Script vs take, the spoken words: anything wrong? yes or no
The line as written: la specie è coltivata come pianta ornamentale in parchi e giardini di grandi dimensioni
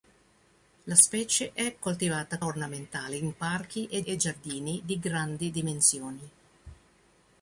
yes